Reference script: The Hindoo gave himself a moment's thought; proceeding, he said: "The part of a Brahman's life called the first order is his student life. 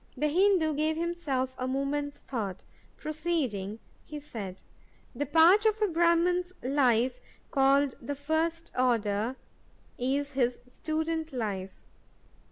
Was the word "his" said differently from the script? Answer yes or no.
no